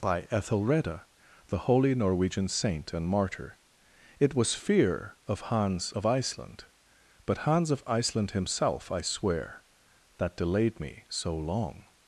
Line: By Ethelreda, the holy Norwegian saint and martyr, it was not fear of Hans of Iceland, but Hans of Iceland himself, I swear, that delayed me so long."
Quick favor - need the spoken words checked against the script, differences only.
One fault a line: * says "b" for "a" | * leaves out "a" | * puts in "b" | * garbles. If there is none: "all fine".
* leaves out "not"